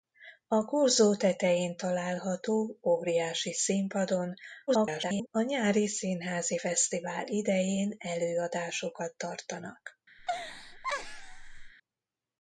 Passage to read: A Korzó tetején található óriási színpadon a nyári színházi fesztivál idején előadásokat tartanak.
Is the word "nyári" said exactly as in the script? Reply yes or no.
yes